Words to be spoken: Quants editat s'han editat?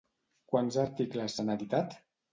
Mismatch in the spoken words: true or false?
true